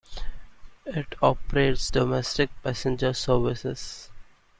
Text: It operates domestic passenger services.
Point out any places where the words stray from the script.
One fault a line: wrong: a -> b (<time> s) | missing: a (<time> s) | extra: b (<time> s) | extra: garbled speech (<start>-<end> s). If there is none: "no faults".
no faults